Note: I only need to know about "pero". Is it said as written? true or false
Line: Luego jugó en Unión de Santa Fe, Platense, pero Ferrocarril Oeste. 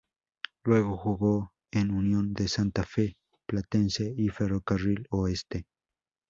false